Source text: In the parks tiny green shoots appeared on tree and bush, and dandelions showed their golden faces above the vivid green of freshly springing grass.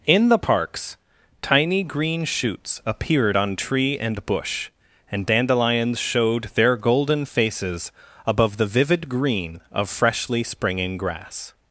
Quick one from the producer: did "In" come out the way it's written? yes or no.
yes